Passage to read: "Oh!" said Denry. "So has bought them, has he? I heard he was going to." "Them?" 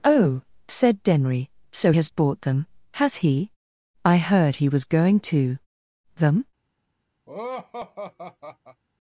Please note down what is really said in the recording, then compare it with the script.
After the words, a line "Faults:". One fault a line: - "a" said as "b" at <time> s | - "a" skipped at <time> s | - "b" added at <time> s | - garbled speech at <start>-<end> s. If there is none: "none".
"Oh!" said Denry. "So has bought them, has he? I heard he was going to." "Them?"
Faults:
none